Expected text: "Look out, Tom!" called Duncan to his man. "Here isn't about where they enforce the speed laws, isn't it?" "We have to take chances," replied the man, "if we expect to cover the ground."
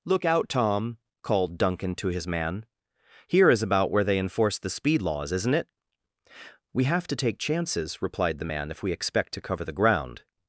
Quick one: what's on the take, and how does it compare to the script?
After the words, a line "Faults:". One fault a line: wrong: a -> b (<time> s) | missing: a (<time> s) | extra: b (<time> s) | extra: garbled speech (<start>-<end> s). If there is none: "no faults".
"Look out, Tom!" called Duncan to his man. "Here is about where they enforce the speed laws, isn't it?" "We have to take chances," replied the man, "if we expect to cover the ground."
Faults:
wrong: isn't -> is (3.5 s)